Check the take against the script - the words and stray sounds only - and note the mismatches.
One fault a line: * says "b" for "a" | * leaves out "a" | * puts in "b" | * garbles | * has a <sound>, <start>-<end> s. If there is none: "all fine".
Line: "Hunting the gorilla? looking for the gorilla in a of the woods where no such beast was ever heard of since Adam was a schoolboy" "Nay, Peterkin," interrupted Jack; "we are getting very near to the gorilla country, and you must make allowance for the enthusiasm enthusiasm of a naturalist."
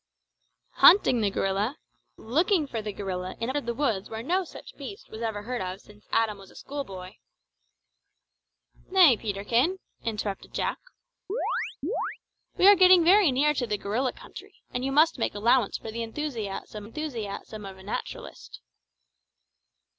* has a chirp, 11.3-12.2 s